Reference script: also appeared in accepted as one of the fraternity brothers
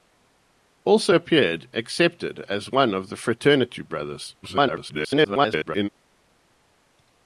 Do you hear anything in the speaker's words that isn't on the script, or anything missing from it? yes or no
yes